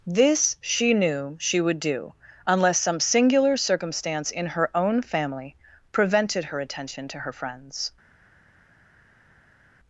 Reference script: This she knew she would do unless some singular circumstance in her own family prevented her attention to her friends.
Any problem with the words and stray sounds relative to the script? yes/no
no